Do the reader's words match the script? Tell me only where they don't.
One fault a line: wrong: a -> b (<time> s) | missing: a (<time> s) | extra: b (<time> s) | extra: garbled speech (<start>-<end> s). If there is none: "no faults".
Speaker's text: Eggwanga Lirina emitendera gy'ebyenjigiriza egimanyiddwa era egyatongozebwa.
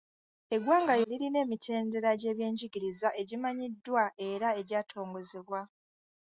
no faults